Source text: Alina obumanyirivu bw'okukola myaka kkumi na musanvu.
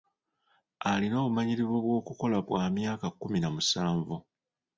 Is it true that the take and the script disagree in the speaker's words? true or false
true